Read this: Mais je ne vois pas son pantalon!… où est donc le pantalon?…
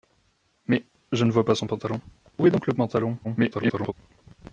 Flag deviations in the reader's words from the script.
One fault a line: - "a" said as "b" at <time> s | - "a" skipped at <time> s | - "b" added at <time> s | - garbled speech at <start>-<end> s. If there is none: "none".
- garbled speech at 3.2-3.9 s